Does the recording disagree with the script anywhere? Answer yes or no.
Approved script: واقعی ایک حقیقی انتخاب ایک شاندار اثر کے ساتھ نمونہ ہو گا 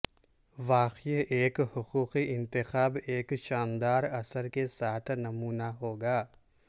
no